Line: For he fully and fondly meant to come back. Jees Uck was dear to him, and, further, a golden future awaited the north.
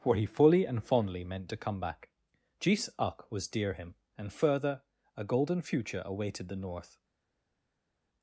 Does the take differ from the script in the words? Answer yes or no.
yes